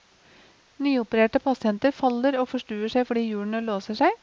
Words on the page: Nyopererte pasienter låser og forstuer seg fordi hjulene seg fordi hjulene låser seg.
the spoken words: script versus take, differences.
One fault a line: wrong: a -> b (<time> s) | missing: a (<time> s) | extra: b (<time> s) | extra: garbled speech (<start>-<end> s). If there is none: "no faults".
wrong: låser -> faller (1.9 s)
missing: seg fordi hjulene (3.6 s)